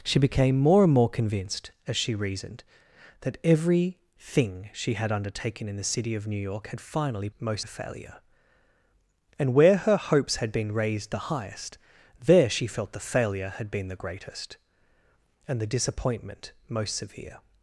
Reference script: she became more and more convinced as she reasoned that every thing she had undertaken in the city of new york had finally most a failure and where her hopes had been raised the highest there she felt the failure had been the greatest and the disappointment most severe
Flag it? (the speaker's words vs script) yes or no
no